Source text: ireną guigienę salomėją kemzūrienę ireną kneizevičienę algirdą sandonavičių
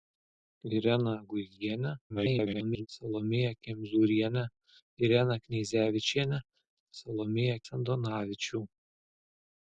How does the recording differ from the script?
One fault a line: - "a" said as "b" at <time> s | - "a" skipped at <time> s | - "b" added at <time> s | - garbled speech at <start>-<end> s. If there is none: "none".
- garbled speech at 2.1-2.9 s
- "algirdą" said as "salomėją" at 7.0 s